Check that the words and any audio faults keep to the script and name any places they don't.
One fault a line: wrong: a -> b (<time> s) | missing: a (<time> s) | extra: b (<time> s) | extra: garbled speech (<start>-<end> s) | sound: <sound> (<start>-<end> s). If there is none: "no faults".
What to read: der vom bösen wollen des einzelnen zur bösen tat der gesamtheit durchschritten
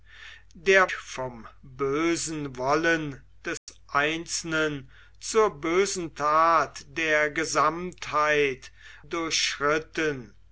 sound: dropout (3.6-3.7 s)